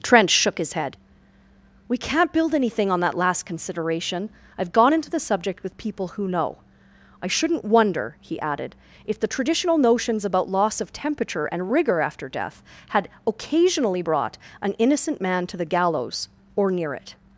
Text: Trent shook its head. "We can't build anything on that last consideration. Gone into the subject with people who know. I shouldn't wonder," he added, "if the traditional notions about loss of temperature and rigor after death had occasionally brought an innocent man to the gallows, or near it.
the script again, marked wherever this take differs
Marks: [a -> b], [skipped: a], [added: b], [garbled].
Trent shook [its -> his] head. "We can't build anything on that last consideration. [added: I've] Gone into the subject with people who know. I shouldn't wonder," he added, "if the traditional notions about loss of temperature and rigor after death had occasionally brought an innocent man to the gallows, or near it.